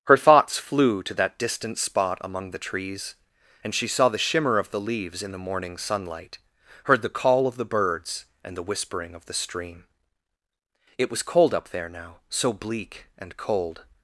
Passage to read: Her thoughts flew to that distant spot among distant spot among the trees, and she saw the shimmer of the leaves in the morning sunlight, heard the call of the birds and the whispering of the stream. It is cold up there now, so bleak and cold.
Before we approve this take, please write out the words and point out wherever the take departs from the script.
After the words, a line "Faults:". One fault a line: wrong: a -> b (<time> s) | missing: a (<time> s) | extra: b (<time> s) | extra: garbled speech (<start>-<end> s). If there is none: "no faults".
Her thoughts flew to that distant spot among the trees, and she saw the shimmer of the leaves in the morning sunlight, heard the call of the birds and the whispering of the stream. It was cold up there now, so bleak and cold.
Faults:
missing: distant spot among (2.5 s)
wrong: is -> was (11.1 s)